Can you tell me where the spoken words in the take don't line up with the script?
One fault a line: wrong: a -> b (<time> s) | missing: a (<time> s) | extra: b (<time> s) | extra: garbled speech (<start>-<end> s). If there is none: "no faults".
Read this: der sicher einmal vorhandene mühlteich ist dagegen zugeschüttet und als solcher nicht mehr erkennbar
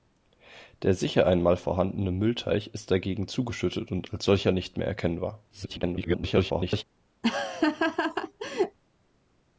extra: garbled speech (5.5-6.8 s)